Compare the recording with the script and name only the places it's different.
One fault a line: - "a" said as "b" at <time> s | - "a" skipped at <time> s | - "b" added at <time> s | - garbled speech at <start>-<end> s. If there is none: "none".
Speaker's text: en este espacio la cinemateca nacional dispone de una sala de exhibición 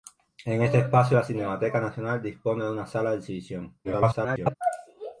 - garbled speech at 3.8-4.5 s